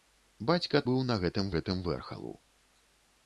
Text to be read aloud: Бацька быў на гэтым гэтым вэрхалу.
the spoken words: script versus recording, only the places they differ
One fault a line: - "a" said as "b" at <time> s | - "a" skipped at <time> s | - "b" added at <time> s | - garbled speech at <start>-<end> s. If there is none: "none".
none